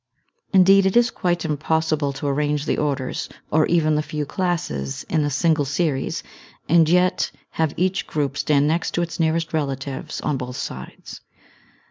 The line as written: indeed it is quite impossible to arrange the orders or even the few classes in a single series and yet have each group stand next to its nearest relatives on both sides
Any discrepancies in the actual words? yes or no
no